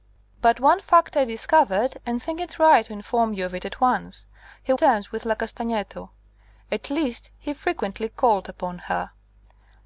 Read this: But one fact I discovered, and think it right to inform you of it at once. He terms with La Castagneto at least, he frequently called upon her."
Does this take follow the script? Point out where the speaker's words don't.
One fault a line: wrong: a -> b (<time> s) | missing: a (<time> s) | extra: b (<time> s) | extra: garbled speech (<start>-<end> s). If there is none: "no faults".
no faults